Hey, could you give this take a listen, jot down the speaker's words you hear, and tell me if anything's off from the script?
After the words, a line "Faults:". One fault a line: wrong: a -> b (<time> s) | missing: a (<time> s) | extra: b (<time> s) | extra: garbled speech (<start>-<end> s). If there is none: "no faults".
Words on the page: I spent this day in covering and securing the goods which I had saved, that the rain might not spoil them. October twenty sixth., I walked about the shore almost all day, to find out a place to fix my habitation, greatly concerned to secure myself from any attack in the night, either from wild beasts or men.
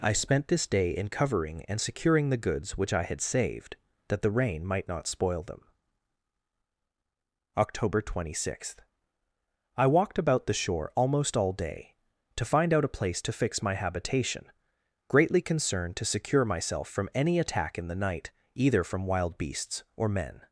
I spent this day in covering and securing the goods which I had saved, that the rain might not spoil them. October twenty sixth., I walked about the shore almost all day, to find out a place to fix my habitation, greatly concerned to secure myself from any attack in the night, either from wild beasts or men.
Faults:
no faults